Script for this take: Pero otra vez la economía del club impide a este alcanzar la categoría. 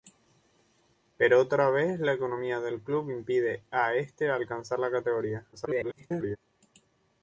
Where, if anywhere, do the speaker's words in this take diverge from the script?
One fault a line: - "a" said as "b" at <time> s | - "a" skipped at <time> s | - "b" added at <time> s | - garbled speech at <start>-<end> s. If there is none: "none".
- garbled speech at 5.5-6.4 s